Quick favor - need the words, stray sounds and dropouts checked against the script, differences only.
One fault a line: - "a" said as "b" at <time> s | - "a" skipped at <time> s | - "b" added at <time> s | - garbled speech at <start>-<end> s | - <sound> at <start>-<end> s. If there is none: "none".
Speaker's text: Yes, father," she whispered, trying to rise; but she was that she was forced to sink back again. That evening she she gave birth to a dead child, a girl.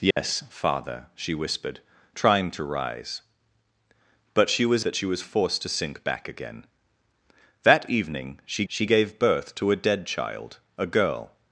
- dropout at 0.1-0.2 s